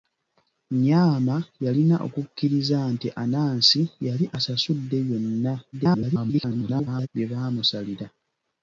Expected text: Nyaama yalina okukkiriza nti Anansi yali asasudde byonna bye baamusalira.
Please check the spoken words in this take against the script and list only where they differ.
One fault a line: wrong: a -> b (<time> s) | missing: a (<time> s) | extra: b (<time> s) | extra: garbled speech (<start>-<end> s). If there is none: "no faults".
extra: garbled speech (5.7-7.1 s)